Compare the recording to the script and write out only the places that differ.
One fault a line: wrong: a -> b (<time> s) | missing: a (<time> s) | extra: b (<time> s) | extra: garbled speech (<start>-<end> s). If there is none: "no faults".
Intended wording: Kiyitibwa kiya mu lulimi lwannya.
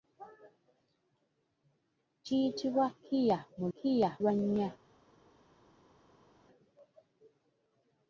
wrong: lulimi -> kiya (3.8 s)